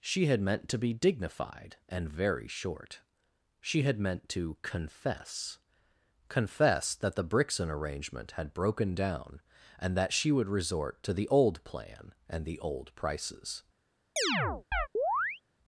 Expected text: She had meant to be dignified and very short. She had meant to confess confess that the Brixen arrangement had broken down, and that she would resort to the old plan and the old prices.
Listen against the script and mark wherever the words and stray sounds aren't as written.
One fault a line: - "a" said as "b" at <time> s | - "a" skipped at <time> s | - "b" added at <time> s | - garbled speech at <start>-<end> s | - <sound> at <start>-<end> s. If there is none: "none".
- chirp at 14.2-15.4 s